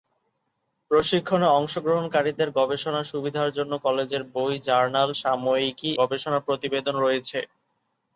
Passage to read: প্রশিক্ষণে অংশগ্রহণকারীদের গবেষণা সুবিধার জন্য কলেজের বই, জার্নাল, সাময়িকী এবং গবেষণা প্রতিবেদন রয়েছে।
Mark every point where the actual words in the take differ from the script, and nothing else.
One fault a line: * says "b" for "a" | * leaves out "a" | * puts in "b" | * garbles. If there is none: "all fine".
* leaves out "এবং"